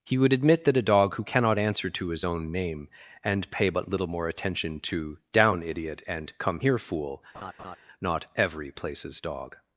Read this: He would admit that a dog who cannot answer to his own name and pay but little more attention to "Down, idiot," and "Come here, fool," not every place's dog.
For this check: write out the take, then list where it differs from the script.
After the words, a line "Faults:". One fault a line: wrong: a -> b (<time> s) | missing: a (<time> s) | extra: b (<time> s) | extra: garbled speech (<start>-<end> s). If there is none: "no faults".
He would admit that a dog who cannot answer to his own name and pay but little more attention to "Down, idiot," and "Come here, fool," not every place's dog.
Faults:
no faults